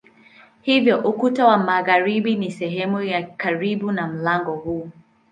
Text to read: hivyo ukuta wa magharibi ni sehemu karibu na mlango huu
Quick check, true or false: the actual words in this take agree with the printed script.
false